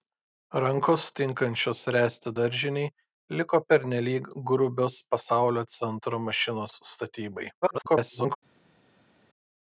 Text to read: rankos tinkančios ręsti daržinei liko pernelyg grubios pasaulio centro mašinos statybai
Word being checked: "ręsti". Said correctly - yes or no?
yes